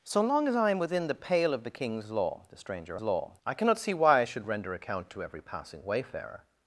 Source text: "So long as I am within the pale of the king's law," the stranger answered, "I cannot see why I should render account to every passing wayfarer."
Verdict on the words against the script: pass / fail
fail